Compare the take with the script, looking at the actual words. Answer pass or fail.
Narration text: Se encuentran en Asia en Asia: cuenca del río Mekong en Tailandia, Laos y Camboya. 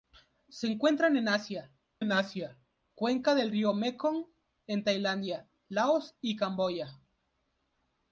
pass